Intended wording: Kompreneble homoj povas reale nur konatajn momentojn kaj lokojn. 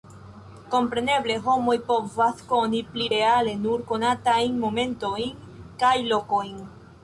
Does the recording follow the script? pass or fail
fail